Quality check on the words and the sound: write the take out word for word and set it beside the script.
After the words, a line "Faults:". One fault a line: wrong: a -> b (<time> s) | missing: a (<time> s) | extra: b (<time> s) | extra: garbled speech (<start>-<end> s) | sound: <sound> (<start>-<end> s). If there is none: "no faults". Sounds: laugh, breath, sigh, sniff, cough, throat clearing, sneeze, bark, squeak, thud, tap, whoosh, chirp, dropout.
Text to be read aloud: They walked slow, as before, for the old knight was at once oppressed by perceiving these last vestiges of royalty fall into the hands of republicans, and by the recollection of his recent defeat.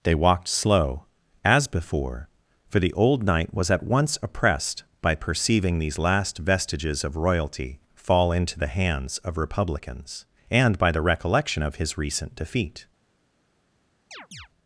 They walked slow, as before, for the old knight was at once oppressed by perceiving these last vestiges of royalty fall into the hands of republicans, and by the recollection of his recent defeat.
Faults:
sound: chirp (14.1-14.5 s)